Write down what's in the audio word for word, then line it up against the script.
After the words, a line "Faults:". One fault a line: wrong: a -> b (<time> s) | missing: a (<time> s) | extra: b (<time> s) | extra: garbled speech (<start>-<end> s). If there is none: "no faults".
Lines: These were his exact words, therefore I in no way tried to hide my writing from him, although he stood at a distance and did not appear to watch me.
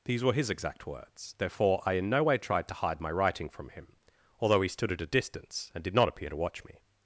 These were his exact words, therefore I in no way tried to hide my writing from him, although he stood at a distance and did not appear to watch me.
Faults:
no faults